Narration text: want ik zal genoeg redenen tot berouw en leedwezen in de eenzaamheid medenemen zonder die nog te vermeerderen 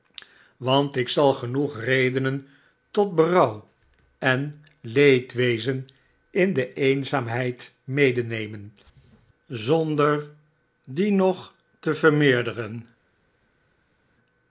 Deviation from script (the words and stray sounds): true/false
false